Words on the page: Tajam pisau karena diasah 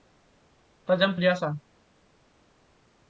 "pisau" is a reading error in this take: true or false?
true